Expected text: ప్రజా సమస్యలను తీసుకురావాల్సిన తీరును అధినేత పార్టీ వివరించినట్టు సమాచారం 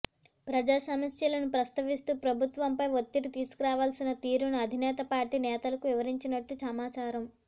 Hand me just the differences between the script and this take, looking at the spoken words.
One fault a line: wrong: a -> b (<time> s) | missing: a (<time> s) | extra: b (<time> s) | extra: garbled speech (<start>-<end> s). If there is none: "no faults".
extra: ప్రస్తావిస్తూ ప్రభుత్వంపై ఒత్తిడి (1.5 s)
extra: నేతలకు (5.5 s)